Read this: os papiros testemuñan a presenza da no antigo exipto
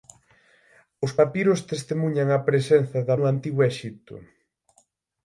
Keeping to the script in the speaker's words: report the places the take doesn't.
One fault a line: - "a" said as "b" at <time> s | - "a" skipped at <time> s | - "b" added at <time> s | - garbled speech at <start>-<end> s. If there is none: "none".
none